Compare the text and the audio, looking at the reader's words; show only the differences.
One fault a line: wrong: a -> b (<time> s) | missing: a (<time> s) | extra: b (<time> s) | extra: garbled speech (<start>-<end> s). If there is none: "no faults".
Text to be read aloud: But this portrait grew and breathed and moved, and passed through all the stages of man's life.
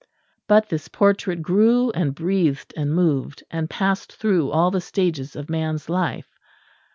no faults